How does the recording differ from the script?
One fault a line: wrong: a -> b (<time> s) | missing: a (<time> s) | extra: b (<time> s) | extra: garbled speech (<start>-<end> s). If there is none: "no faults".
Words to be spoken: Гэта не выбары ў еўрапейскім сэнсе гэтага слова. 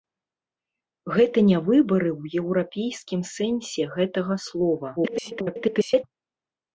extra: garbled speech (5.0-6.0 s)